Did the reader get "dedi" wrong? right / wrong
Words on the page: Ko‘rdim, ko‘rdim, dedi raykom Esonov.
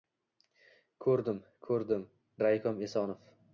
wrong